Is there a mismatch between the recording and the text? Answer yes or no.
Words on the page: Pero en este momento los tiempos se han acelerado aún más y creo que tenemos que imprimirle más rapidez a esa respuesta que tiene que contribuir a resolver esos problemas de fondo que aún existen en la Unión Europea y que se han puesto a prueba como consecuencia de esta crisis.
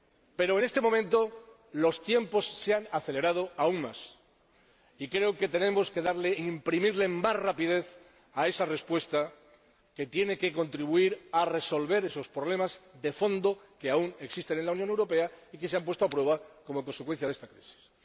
no